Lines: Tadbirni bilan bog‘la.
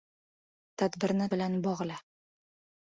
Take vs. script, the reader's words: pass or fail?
pass